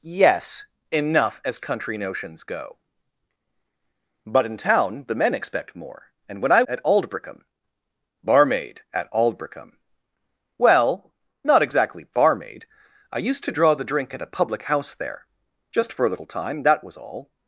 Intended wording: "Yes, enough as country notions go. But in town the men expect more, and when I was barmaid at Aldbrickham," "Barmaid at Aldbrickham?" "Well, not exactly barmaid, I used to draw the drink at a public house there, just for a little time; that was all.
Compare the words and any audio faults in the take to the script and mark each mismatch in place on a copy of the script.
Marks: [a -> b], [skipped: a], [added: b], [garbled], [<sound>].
"Yes, enough as country notions go. But in town the men expect more, and when I [skipped: was barmaid] at Aldbrickham," "Barmaid at Aldbrickham?" "Well, not exactly barmaid, I used to draw the drink at a public house there, just for a little time; that was all.